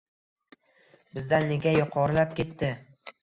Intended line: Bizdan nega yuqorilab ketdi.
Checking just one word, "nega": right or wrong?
right